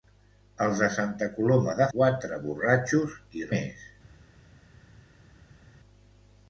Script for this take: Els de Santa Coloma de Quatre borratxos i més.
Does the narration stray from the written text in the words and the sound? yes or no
no